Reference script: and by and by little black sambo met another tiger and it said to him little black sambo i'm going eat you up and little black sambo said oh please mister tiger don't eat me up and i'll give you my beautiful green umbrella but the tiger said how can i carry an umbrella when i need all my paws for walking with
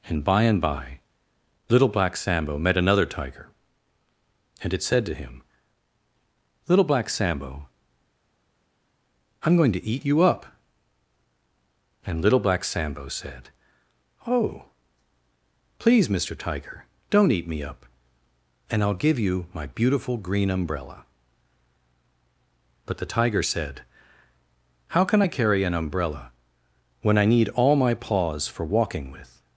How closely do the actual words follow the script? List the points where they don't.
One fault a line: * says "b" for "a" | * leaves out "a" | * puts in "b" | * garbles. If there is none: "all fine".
* puts in "to"